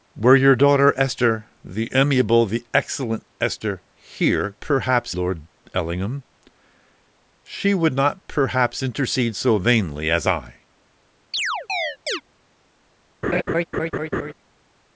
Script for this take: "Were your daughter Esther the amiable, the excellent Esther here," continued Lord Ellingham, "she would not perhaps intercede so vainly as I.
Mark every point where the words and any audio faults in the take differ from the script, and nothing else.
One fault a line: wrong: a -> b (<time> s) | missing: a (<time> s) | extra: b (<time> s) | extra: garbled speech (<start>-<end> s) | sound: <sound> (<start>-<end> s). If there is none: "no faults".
wrong: continued -> perhaps (4.6 s)
sound: chirp (11.3-12.2 s)
sound: laugh (13.2-14.3 s)